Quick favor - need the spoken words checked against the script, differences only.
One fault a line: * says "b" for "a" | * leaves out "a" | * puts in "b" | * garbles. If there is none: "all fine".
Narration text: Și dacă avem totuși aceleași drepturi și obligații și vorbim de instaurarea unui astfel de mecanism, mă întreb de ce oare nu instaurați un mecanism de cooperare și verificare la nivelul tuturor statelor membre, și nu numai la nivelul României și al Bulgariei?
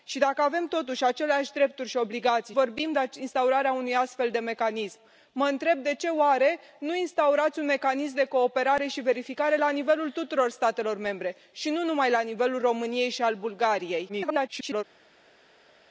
* leaves out "și"
* garbles